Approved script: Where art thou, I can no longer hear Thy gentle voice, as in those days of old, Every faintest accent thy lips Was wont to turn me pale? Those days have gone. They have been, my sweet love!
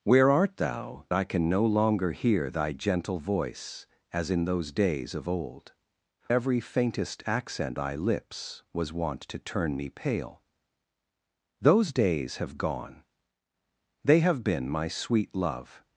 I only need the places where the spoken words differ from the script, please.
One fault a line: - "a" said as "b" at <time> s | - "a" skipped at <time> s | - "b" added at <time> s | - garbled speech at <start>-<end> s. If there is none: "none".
none